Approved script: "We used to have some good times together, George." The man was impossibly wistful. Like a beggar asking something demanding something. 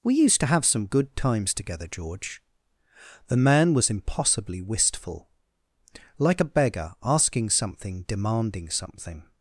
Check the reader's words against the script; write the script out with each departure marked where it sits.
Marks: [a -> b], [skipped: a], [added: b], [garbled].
"We used to have some good times together, George." The man was impossibly wistful. Like a beggar asking something demanding something.